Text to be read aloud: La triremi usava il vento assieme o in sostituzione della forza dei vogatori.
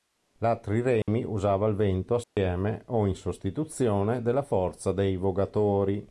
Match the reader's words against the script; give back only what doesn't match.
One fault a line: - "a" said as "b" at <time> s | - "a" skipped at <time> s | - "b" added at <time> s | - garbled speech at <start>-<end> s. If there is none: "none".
none